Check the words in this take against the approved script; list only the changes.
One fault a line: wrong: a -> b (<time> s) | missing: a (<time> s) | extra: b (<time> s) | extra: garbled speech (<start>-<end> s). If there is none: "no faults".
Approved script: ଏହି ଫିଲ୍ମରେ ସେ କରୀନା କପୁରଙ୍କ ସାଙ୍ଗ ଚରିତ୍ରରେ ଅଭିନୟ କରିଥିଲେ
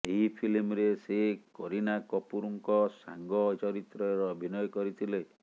no faults